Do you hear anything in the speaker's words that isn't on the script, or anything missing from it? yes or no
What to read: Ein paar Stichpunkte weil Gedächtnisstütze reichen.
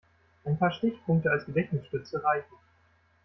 yes